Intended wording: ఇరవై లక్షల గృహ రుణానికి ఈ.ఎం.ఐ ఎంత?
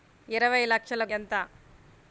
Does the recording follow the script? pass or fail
fail